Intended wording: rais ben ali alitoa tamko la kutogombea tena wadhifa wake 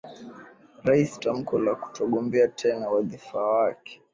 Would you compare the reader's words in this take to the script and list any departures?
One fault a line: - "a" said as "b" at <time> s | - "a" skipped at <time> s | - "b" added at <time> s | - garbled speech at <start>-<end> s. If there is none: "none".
- "ben ali alitoa" skipped at 1.2 s